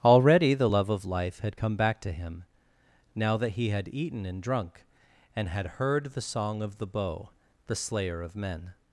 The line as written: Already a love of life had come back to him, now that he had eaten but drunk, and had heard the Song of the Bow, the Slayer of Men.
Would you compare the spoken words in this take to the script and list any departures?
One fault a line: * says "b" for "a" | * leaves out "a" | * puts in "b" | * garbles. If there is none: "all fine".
* says "the" for "a"
* says "and" for "but"